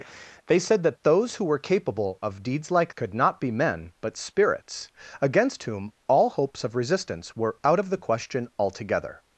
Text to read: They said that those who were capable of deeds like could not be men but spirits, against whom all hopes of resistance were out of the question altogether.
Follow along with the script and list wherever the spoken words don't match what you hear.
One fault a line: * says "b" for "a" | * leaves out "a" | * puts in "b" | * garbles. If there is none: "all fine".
all fine